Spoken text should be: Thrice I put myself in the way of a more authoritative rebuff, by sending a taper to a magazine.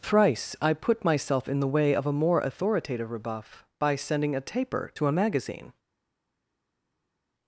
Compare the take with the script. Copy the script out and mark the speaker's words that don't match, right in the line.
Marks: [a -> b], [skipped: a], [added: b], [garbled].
Thrice I put myself in the way of a more authoritative rebuff, by sending a taper to a magazine.